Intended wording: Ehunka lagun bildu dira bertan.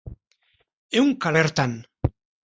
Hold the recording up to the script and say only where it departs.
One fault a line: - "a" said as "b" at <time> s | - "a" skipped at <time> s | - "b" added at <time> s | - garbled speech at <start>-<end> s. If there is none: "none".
- "lagun bildu dira" skipped at 1.3 s